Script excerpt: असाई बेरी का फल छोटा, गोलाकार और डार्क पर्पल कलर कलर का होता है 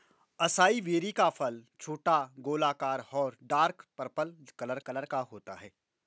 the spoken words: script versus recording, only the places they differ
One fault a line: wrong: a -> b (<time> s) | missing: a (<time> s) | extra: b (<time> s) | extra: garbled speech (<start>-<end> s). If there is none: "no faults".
no faults